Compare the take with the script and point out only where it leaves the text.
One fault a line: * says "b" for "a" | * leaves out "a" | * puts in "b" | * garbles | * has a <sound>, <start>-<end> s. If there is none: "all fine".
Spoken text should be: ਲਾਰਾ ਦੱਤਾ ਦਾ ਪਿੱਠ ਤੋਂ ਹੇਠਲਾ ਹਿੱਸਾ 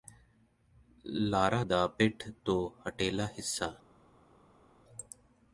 * leaves out "ਦੱਤਾ"